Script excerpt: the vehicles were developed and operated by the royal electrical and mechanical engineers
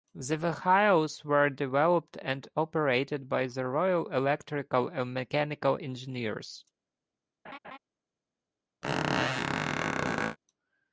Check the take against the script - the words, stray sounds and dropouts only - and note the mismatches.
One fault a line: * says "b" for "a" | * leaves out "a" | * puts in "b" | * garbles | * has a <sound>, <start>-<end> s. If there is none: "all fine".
* has a laugh, 7.4-7.8 s
* has a squeak, 8.8-10.4 s